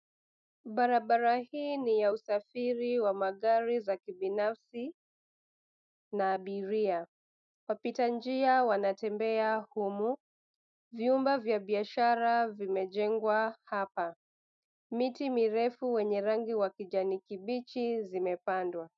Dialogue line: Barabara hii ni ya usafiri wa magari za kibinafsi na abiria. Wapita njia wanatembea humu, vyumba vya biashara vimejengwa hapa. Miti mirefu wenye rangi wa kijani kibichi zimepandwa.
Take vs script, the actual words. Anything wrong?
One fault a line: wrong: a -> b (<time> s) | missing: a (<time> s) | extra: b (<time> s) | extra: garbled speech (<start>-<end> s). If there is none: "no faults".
no faults